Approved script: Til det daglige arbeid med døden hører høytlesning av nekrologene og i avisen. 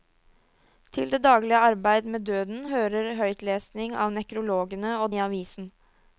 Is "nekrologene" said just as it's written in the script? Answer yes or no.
yes